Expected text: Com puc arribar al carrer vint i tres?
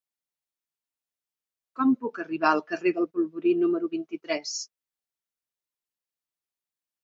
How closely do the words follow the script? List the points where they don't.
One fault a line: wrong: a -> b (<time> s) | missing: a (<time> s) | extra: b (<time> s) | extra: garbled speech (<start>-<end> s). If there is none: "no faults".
extra: del Polvorí número (3.0 s)